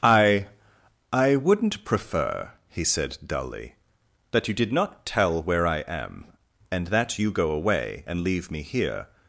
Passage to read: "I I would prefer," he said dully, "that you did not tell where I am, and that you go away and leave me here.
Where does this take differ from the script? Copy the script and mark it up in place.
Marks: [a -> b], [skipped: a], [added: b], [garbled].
"I I [would -> wouldn't] prefer," he said dully, "that you did not tell where I am, and that you go away and leave me here.